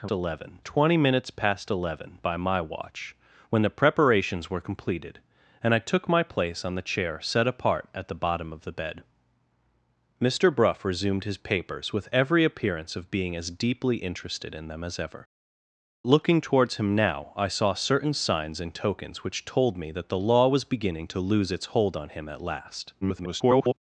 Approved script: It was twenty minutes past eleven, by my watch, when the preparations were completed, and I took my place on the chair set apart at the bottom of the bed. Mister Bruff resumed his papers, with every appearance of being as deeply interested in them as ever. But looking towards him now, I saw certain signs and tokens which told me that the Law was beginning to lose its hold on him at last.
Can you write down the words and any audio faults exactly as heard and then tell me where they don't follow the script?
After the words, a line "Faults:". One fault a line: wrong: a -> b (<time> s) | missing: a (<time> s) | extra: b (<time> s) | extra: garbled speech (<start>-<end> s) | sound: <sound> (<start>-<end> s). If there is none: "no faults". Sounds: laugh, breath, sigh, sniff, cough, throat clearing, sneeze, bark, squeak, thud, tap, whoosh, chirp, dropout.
It eleven twenty minutes past eleven, by my watch, when the preparations were completed, and I took my place on the chair set apart at the bottom of the bed. Mister Bruff resumed his papers, with every appearance of being as deeply interested in them as ever. Looking towards him now, I saw certain signs and tokens which told me that the Law was beginning to lose its hold on him at last. [garbled]
Faults:
wrong: was -> eleven (0.1 s)
missing: But (15.2 s)
extra: garbled speech (23.0-23.7 s)